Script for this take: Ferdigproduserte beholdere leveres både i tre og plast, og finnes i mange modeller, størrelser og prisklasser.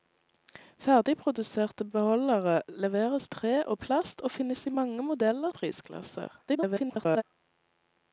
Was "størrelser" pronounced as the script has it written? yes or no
no